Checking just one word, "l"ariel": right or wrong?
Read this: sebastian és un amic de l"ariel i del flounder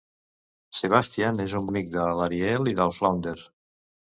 right